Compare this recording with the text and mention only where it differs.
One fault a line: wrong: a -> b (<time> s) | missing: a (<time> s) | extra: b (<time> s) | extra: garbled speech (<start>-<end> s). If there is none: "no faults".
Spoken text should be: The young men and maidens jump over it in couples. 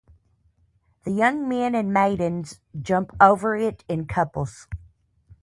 no faults